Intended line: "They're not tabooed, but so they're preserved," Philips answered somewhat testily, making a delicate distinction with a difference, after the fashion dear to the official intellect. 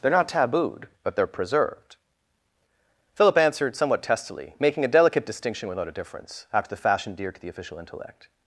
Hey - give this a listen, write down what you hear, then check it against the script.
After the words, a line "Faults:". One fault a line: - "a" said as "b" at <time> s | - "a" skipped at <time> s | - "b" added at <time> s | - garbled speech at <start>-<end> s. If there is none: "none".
"They're not tabooed, but they're preserved," Philip answered somewhat testily, making a delicate distinction without a difference, after the fashion dear to the official intellect.
Faults:
- "so" skipped at 1.2 s
- "Philips" said as "Philip" at 3.1 s
- "with" said as "without" at 5.7 s